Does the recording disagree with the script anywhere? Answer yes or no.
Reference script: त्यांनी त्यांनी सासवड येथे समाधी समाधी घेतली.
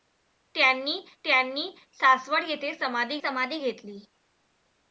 no